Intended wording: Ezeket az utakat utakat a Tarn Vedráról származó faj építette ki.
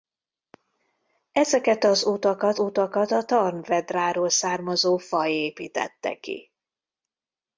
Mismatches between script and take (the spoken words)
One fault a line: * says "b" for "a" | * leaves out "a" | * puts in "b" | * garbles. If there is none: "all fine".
all fine